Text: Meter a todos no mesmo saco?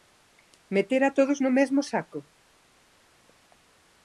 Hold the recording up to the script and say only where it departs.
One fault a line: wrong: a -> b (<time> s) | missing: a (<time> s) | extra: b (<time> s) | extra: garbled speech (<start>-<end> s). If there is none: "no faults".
no faults